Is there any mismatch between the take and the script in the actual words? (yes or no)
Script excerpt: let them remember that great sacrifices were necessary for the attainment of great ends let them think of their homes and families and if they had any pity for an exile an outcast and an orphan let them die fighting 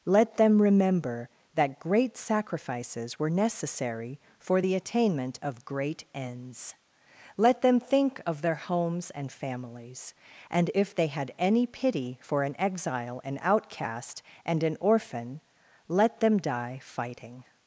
no